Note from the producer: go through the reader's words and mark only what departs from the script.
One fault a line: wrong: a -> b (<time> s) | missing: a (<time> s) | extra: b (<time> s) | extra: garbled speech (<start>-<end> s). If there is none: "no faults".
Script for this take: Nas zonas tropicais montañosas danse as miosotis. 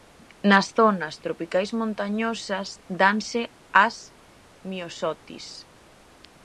no faults